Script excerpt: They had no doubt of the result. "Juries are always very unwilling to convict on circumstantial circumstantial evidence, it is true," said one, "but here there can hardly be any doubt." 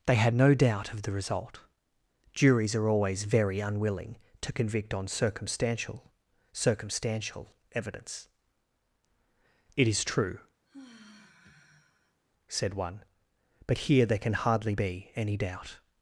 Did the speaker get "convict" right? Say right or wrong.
right